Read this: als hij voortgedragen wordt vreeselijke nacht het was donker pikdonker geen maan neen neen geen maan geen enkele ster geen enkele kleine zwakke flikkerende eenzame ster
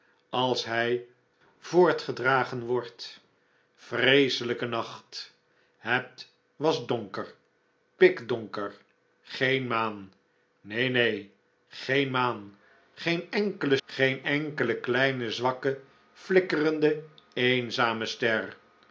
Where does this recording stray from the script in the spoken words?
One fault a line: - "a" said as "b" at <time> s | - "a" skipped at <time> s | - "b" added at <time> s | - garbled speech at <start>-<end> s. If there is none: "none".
- "ster" skipped at 13.8 s